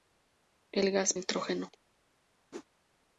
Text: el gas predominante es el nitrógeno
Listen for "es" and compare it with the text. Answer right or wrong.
wrong